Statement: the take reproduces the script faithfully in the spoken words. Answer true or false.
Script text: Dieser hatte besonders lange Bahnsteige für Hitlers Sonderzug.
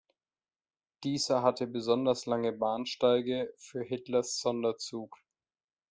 true